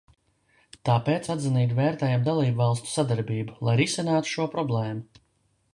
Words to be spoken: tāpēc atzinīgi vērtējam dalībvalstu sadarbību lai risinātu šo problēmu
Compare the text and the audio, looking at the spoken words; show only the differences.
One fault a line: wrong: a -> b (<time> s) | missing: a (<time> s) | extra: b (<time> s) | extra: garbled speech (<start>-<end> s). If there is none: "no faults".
no faults